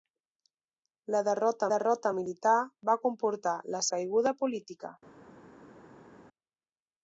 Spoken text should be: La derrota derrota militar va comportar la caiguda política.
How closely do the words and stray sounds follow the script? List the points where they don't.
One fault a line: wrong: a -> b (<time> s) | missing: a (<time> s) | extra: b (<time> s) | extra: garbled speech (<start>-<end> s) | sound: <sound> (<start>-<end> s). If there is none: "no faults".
no faults